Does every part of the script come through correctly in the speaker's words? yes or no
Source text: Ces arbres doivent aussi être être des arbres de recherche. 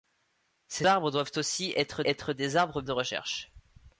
yes